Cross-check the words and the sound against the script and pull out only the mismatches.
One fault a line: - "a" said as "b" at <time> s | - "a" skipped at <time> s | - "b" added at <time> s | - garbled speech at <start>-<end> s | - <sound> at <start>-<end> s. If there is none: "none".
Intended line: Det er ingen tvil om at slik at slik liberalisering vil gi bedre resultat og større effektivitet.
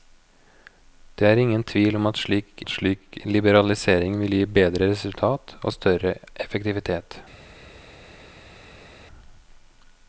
none